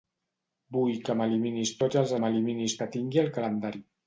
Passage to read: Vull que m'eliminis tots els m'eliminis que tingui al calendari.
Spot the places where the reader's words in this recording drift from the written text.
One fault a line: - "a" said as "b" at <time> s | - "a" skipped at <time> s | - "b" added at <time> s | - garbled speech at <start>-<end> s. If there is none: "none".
none